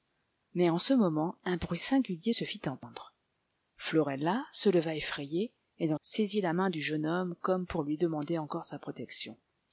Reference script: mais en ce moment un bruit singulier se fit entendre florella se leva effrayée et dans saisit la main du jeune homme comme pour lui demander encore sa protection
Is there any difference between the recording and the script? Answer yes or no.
no